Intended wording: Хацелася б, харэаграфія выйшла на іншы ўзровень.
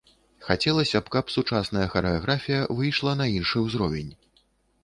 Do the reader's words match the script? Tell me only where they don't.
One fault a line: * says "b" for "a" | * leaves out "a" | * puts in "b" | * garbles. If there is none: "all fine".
* puts in "каб сучасная"